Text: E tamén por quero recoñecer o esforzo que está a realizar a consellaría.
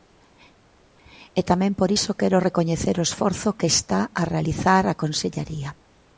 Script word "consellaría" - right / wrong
right